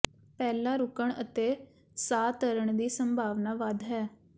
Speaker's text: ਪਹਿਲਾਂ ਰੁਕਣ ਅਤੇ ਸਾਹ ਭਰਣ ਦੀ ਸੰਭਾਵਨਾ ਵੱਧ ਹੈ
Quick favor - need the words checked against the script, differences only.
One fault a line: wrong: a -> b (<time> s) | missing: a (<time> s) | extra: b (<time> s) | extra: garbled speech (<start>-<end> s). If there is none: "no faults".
no faults